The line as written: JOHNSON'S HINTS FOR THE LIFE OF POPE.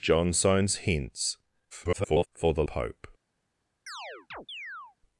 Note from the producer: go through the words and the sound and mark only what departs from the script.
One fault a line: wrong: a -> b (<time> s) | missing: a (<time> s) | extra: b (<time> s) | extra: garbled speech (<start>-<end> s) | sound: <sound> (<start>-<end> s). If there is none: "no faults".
extra: garbled speech (1.7-2.3 s)
missing: LIFE OF (2.6 s)
sound: chirp (3.9-5.0 s)